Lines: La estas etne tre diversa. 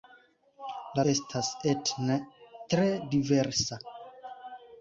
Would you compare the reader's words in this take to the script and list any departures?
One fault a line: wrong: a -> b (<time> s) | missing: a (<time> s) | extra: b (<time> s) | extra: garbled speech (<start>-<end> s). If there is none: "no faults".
no faults